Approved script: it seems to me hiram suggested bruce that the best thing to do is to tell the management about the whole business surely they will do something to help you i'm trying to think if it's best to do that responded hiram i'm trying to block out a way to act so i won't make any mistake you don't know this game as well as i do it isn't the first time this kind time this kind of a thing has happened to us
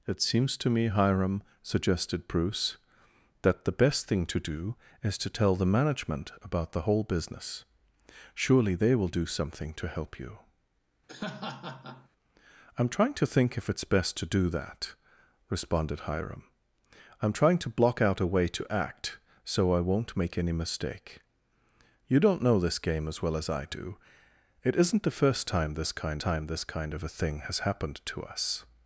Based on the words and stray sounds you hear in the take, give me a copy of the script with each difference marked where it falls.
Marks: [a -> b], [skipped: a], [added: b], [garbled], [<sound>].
it seems to me hiram suggested bruce that the best thing to do is to tell the management about the whole business surely they will do something to help you [laugh] i'm trying to think if it's best to do that responded hiram i'm trying to block out a way to act so i won't make any mistake you don't know this game as well as i do it isn't the first time this kind time this kind of a thing has happened to us